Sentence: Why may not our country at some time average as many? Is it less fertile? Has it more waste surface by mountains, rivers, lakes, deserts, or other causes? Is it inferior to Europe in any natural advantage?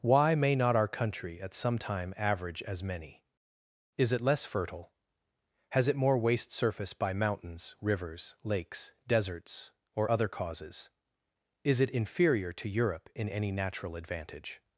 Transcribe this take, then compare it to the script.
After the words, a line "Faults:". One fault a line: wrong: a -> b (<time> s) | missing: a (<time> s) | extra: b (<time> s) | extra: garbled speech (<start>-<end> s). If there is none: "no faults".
Why may not our country at some time average as many? Is it less fertile? Has it more waste surface by mountains, rivers, lakes, deserts, or other causes? Is it inferior to Europe in any natural advantage?
Faults:
no faults